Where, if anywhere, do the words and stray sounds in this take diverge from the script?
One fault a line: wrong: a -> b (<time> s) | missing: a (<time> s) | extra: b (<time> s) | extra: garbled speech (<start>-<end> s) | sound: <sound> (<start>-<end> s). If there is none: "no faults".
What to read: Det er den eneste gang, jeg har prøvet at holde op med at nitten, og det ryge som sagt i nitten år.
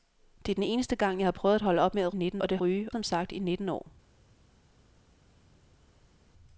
no faults